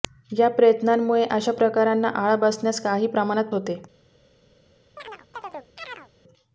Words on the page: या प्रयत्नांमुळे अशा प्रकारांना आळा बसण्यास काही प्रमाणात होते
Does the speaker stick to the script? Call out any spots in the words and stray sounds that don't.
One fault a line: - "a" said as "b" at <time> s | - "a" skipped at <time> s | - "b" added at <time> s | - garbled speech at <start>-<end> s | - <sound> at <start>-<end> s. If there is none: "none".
- chirp at 5.0-6.1 s